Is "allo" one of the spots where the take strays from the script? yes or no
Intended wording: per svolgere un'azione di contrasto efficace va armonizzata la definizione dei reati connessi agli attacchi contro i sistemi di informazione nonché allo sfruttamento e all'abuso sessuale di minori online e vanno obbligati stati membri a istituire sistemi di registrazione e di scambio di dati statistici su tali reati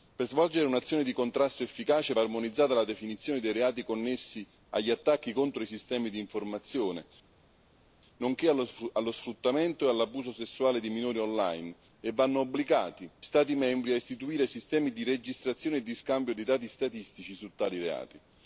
no